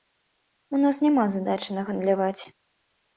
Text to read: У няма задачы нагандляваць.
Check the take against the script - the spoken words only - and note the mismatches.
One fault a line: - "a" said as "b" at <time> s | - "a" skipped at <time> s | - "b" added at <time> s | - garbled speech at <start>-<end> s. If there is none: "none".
- "нас" added at 0.8 s